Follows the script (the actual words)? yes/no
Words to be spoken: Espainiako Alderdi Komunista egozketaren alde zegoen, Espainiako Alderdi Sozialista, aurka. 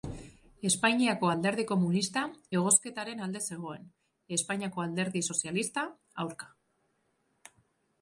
yes